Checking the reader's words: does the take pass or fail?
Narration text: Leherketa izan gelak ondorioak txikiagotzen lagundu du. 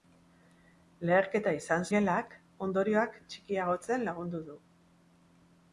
pass